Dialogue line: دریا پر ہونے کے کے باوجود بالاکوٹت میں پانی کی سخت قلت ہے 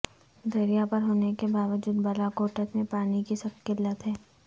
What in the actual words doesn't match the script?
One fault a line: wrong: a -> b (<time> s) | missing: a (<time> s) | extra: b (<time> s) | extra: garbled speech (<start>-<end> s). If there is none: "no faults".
missing: کے (1.5 s)